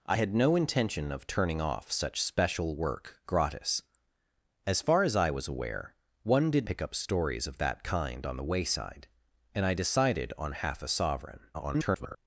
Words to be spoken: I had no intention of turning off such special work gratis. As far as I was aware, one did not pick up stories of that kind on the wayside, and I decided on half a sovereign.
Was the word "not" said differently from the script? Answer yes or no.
yes